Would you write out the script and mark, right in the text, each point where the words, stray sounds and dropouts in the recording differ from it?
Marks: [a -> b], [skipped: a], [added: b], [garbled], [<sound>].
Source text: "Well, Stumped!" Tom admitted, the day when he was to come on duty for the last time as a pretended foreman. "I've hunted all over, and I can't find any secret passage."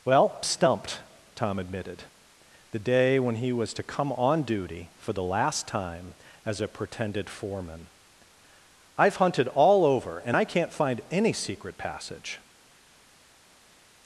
"Well, Stumped!" Tom admitted, the day when he was to come on duty for the last time as a pretended foreman. "I've hunted all over, and I can't find any secret passage."